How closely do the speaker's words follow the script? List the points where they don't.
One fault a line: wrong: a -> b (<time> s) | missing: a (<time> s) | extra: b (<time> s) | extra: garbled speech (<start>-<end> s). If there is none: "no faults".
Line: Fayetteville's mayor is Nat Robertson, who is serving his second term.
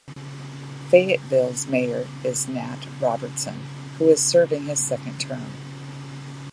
no faults